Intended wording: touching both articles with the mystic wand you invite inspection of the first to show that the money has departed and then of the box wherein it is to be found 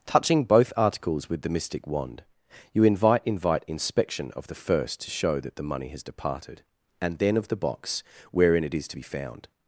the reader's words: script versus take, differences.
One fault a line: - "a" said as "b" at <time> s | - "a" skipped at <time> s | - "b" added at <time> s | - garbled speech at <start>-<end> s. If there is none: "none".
- "invite" added at 3.2 s